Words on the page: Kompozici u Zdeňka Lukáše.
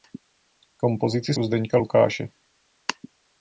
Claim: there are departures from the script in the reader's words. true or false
false